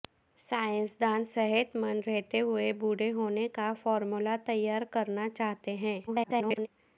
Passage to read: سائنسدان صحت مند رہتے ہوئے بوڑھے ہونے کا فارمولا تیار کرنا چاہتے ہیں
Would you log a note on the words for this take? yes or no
yes